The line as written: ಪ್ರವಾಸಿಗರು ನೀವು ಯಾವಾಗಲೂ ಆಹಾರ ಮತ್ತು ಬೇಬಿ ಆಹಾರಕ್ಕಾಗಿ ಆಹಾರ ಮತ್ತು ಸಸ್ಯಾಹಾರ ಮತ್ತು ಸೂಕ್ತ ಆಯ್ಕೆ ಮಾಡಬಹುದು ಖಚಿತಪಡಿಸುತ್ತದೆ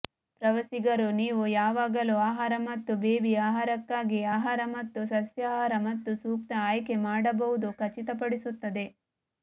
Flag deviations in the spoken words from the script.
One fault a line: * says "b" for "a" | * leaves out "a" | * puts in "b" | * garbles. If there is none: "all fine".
all fine